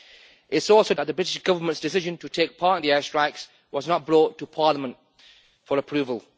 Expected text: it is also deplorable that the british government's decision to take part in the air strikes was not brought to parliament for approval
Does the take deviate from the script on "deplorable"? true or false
true